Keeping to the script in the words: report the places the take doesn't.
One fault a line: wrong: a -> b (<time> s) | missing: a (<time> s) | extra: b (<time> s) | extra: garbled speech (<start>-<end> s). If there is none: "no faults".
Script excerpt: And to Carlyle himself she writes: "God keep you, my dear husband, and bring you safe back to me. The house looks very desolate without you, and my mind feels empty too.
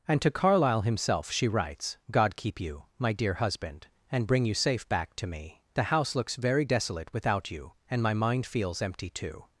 no faults